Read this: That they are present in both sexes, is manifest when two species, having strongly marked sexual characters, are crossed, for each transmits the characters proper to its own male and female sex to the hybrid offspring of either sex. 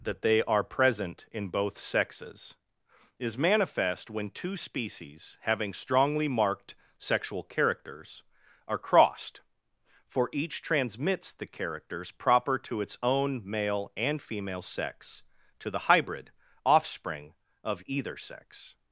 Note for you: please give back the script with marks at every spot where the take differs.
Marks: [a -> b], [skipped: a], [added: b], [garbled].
That they are present in both sexes, is manifest when two species, having strongly marked sexual characters, are crossed, for each transmits the characters proper to its own male and female sex to the hybrid offspring of either sex.